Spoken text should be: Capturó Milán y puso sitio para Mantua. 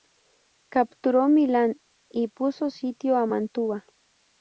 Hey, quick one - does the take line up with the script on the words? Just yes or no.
no